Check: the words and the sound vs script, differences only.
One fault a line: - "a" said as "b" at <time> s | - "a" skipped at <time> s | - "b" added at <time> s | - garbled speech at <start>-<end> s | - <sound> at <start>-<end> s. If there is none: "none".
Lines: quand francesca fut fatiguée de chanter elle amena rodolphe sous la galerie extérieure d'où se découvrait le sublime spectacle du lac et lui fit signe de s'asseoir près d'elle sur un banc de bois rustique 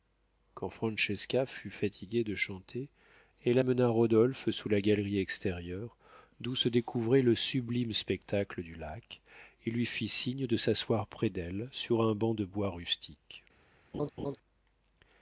- laugh at 13.9-14.4 s